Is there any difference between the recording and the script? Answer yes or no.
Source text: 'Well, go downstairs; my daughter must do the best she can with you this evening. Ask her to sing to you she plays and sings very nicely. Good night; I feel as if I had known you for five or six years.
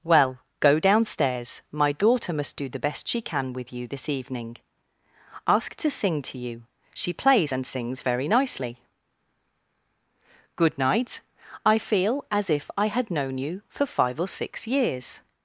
yes